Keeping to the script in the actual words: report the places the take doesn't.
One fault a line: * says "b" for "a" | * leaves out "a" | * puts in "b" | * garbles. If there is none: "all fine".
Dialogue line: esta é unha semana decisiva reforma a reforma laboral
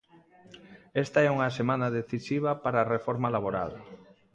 * says "para" for "reforma"